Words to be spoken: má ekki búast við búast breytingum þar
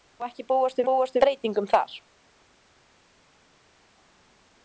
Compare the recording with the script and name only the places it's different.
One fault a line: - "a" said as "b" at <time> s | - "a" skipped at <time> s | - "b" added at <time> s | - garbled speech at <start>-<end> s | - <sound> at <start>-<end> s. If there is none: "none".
none